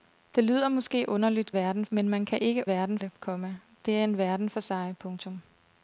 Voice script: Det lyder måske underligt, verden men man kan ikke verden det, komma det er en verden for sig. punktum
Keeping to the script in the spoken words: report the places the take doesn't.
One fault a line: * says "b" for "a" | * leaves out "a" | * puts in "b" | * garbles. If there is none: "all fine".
all fine